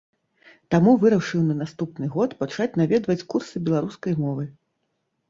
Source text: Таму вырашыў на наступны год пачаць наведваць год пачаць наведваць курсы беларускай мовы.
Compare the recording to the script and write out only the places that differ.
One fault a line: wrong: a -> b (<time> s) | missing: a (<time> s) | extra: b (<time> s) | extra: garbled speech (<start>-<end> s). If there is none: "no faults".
missing: год пачаць наведваць (3.2 s)